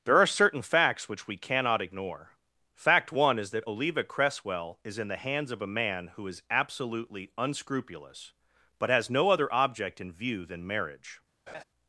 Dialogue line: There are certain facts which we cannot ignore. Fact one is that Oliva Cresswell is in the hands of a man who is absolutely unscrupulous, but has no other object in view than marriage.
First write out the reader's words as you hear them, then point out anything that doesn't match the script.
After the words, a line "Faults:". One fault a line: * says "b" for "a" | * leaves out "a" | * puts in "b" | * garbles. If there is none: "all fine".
There are certain facts which we cannot ignore. Fact one is that Oliva Cresswell is in the hands of a man who is absolutely unscrupulous, but has no other object in view than marriage.
Faults:
all fine